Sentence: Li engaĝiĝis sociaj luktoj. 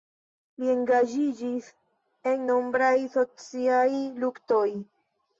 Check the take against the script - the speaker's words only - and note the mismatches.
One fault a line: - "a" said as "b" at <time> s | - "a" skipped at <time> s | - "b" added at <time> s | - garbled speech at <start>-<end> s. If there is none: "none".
- "en nombraj" added at 2.3 s